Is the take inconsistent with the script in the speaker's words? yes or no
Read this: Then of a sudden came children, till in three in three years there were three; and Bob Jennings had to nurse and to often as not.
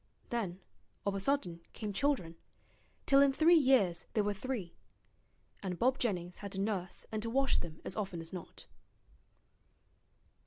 yes